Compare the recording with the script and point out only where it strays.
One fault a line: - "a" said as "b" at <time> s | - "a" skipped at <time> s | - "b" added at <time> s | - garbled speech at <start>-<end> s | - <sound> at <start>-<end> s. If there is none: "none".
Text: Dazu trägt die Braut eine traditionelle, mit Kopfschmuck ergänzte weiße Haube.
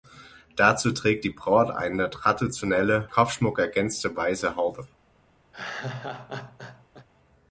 - "mit" skipped at 3.1 s
- laugh at 5.5-7.1 s